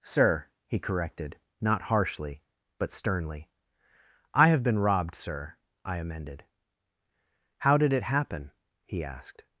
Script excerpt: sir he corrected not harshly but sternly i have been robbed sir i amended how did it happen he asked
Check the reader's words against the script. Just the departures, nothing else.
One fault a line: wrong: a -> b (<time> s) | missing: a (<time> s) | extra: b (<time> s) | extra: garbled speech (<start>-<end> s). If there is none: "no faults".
no faults